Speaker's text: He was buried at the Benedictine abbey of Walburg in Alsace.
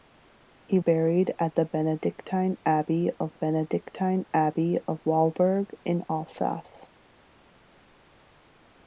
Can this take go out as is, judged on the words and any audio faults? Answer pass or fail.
fail